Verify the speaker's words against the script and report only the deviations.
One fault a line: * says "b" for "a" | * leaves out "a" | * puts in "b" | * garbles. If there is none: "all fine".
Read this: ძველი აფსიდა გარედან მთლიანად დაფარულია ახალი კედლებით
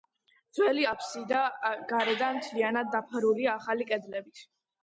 all fine